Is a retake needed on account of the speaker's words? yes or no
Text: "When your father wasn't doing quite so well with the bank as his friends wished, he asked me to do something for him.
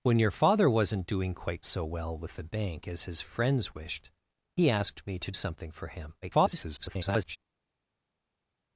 yes